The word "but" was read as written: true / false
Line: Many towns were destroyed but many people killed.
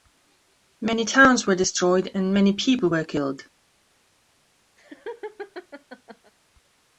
false